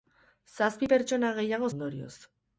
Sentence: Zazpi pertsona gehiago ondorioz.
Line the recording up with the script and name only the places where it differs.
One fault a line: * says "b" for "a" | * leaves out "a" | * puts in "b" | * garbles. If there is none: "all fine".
all fine